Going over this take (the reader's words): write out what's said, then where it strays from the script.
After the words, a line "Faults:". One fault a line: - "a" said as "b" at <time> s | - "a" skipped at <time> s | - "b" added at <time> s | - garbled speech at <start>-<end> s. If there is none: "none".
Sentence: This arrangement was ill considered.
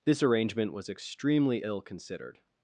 This arrangement was extremely ill considered.
Faults:
- "extremely" added at 0.9 s